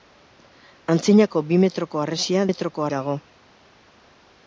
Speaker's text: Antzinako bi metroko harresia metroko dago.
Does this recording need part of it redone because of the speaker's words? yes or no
no